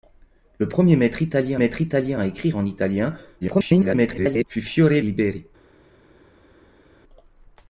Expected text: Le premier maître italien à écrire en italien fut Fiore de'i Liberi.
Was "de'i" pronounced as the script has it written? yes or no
no